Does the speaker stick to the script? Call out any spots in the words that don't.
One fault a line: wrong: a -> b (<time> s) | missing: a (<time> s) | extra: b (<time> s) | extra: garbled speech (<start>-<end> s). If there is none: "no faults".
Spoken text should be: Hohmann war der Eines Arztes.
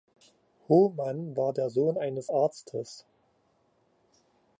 extra: Sohn (1.7 s)